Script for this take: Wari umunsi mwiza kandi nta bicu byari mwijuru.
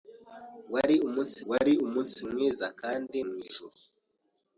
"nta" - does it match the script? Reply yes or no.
no